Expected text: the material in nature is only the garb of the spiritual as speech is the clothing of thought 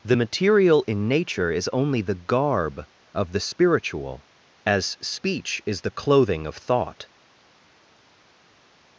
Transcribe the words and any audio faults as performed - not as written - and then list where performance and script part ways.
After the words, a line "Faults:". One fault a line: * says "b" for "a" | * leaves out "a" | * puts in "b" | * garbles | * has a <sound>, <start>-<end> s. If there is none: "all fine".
the material in nature is only the garb of the spiritual as speech is the clothing of thought
Faults:
all fine